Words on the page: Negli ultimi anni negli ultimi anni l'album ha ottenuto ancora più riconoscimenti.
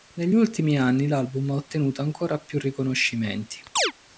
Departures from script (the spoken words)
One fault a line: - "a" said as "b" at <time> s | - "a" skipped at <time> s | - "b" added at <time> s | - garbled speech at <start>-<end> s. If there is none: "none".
- "negli ultimi anni" skipped at 1.1 s